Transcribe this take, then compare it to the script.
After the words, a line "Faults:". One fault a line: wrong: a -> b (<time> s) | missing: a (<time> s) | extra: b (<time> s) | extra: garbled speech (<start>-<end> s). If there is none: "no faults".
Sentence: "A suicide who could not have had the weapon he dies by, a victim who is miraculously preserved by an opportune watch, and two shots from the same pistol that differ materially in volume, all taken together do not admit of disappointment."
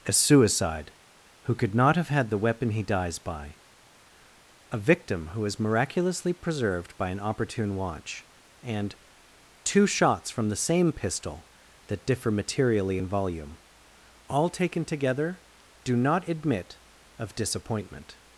"A suicide who could not have had the weapon he dies by, a victim who is miraculously preserved by an opportune watch, and two shots from the same pistol that differ materially in volume, all taken together do not admit of disappointment."
Faults:
no faults